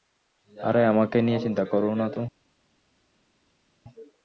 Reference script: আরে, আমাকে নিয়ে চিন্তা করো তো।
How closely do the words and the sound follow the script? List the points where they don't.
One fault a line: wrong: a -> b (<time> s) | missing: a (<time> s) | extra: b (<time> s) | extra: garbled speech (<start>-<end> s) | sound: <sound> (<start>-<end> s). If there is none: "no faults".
extra: না (1.9 s)